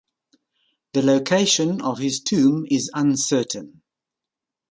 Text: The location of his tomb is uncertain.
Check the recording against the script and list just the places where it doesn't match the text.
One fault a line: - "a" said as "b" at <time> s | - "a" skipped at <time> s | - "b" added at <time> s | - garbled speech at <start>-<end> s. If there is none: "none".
none